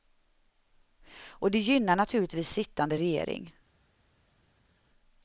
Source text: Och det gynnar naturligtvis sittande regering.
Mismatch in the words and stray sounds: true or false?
false